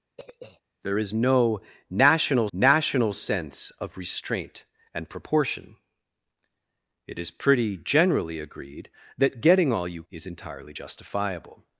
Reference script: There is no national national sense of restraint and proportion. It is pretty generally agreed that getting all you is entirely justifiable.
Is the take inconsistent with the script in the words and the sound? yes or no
yes